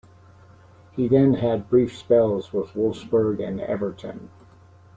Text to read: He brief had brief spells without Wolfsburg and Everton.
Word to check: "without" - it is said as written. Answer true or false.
false